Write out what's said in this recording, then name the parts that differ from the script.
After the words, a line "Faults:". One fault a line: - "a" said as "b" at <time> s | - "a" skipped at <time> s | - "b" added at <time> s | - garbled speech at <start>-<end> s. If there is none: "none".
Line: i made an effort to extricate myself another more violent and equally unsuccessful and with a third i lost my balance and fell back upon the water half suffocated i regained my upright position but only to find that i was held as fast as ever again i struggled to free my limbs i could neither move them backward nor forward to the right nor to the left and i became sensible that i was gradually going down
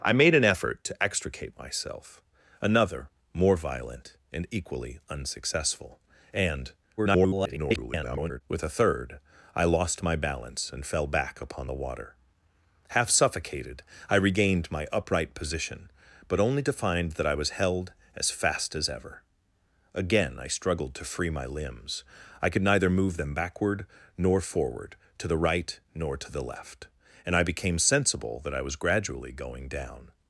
i made an effort to extricate myself another more violent and equally unsuccessful and [garbled] with a third i lost my balance and fell back upon the water half suffocated i regained my upright position but only to find that i was held as fast as ever again i struggled to free my limbs i could neither move them backward nor forward to the right nor to the left and i became sensible that i was gradually going down
Faults:
- garbled speech at 7.0-8.4 s